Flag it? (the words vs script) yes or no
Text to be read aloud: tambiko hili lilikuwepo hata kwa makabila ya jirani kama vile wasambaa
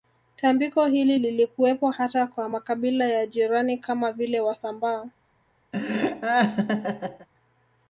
no